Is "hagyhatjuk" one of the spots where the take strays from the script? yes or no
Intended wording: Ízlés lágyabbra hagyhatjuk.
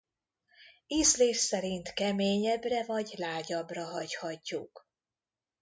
no